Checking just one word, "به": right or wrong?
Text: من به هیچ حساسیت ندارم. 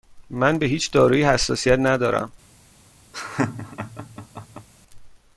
right